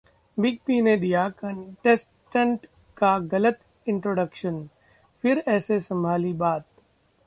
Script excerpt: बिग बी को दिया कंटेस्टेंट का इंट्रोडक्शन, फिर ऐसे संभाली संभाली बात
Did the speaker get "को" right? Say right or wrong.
wrong